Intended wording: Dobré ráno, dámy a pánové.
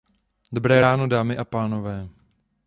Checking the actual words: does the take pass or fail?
pass